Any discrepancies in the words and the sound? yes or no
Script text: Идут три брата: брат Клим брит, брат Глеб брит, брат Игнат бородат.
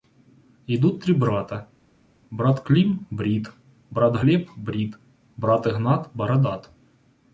no